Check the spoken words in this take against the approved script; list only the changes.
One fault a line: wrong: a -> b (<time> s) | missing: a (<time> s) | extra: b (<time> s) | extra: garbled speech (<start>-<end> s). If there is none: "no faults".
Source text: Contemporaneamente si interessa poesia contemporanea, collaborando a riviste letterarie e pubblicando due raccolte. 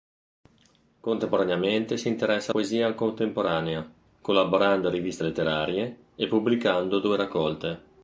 no faults